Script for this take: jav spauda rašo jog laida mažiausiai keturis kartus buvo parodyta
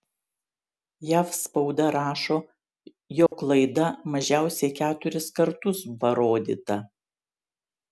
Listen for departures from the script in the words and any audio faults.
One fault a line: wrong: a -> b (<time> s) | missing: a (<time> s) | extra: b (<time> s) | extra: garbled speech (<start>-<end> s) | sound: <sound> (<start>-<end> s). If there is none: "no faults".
sound: dropout (3.3-3.3 s)
missing: buvo (5.8 s)